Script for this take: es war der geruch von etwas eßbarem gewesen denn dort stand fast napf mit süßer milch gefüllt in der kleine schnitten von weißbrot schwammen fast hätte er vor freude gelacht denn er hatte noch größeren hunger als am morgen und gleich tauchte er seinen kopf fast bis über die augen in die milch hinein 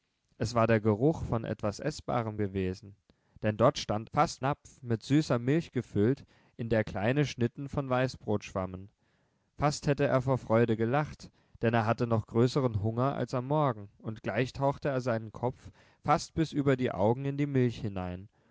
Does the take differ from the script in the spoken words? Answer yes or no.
no